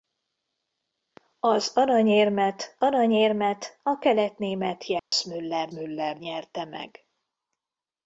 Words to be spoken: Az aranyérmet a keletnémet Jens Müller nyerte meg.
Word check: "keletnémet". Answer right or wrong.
right